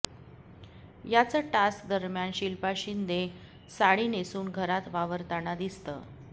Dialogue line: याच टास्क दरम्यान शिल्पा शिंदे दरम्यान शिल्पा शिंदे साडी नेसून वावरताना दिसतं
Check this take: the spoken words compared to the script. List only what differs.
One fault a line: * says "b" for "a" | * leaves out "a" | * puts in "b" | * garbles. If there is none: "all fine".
* leaves out "दरम्यान शिल्पा शिंदे"
* puts in "घरात"